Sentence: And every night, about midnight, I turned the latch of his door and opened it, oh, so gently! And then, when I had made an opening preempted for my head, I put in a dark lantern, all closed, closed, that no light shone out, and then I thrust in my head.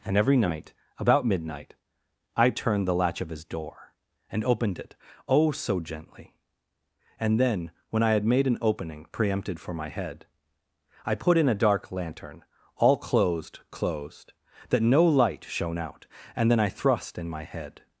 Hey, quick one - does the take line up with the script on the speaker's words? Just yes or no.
yes